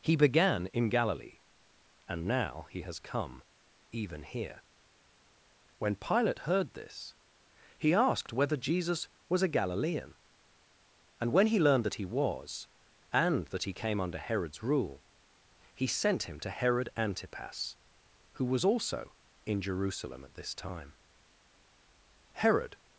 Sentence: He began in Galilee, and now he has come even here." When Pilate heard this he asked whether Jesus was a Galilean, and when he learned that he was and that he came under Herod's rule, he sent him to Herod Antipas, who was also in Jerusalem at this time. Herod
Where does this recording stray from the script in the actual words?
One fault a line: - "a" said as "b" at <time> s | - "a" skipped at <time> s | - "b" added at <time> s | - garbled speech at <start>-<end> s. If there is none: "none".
none